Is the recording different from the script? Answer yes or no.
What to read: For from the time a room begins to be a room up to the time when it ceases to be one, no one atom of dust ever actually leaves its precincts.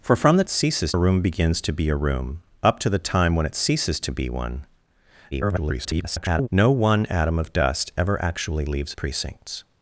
yes